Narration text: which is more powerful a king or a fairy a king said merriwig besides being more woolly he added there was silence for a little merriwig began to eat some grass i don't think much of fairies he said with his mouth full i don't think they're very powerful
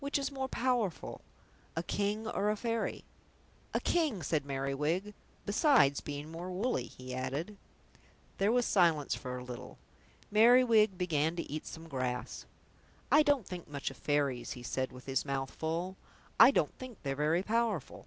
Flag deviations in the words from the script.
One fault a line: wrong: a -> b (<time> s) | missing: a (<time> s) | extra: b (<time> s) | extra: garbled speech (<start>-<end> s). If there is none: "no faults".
no faults